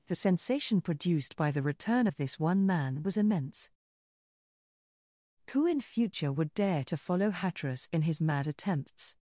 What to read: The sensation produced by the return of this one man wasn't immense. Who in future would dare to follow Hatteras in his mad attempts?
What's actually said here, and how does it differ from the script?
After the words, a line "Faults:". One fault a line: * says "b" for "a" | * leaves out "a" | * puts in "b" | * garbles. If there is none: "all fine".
The sensation produced by the return of this one man was immense. Who in future would dare to follow Hatteras in his mad attempts?
Faults:
* says "was" for "wasn't"